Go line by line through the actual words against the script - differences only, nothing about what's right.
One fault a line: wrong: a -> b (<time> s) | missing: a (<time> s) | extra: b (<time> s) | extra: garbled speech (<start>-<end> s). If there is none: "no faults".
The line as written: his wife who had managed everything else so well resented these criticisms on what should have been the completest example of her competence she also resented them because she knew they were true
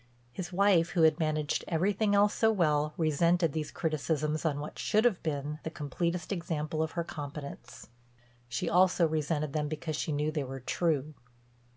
no faults